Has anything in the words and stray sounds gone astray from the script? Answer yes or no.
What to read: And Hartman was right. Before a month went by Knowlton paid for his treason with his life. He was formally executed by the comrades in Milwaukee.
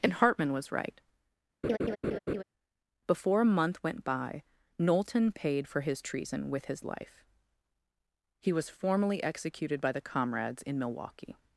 yes